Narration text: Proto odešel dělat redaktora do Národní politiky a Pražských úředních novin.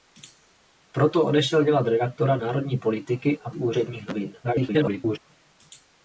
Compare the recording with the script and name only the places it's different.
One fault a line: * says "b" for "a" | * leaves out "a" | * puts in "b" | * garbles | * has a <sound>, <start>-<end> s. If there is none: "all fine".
* leaves out "do"
* leaves out "Pražských"
* garbles